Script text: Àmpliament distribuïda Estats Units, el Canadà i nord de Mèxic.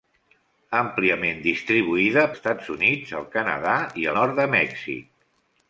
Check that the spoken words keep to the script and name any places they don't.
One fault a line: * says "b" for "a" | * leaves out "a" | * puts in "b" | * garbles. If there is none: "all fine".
all fine